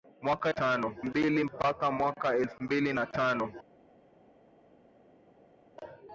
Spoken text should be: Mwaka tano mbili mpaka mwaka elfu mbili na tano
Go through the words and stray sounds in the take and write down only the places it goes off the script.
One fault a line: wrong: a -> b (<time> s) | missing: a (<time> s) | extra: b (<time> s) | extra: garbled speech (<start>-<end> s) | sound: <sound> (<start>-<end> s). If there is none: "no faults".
no faults